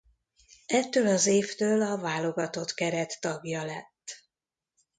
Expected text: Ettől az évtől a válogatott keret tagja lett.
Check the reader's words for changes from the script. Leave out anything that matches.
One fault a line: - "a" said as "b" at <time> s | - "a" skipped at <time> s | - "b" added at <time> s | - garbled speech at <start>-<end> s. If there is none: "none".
none